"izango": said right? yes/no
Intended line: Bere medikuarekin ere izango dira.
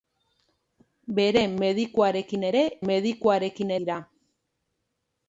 no